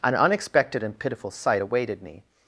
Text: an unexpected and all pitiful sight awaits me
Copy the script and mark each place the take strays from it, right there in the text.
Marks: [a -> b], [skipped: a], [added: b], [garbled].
an unexpected and [skipped: all] pitiful sight [awaits -> awaited] me